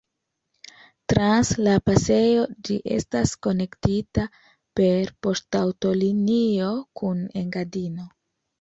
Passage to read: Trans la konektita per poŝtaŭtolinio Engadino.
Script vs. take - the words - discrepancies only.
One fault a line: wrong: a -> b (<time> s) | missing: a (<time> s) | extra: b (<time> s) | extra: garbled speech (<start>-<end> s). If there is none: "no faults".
extra: pasejo ĝi estas (1.9 s)
extra: kun (7.0 s)